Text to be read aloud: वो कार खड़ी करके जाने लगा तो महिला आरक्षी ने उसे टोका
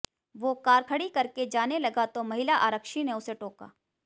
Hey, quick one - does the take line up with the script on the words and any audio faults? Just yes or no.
yes